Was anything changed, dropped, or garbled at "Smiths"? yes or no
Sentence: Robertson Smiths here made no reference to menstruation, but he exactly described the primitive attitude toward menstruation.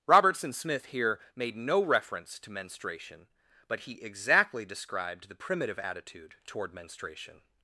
yes